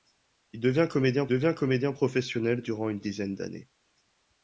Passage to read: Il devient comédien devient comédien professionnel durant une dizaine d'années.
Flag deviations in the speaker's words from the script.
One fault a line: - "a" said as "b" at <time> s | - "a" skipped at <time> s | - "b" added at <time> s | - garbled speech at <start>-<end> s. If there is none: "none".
none